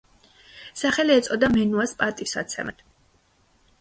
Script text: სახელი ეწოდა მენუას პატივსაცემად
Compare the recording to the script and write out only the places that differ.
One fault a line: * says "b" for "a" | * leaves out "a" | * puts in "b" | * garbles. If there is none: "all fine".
all fine